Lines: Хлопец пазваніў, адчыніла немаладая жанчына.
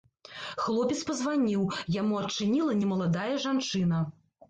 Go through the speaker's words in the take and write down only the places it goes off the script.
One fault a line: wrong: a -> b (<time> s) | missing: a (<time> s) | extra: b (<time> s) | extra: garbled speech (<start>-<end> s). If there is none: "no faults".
extra: яму (2.0 s)